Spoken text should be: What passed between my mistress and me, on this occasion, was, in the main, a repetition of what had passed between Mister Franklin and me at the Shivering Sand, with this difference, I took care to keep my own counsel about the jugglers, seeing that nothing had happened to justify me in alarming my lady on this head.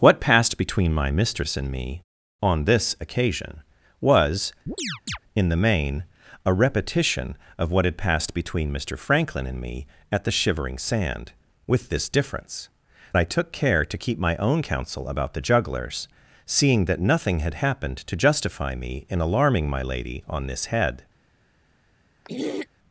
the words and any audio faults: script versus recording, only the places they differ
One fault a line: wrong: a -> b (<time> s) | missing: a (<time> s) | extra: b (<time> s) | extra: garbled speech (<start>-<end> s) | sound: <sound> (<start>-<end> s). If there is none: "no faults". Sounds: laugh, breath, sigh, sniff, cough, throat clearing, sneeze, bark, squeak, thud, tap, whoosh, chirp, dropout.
sound: chirp (4.7-5.2 s)
sound: throat clearing (22.2-22.7 s)